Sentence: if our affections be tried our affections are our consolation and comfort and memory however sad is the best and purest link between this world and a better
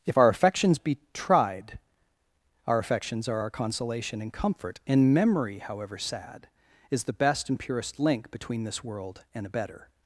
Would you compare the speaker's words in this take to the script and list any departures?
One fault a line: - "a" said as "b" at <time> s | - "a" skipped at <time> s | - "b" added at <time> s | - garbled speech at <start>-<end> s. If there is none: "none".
none